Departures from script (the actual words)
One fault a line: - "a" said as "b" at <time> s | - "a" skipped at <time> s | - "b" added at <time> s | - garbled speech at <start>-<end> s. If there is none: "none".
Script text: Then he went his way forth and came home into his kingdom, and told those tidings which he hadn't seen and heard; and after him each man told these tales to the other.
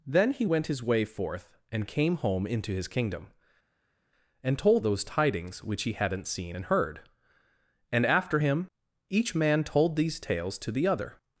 none